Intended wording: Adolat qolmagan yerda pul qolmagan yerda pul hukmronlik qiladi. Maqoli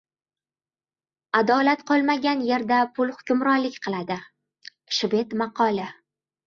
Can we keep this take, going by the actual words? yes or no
no